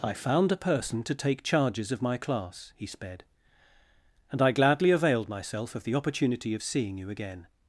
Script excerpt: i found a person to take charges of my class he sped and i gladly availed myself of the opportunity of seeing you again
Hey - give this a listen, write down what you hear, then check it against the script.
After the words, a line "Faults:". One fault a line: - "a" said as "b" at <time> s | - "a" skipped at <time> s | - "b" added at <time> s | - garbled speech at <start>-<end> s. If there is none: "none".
i found a person to take charges of my class he sped and i gladly availed myself of the opportunity of seeing you again
Faults:
none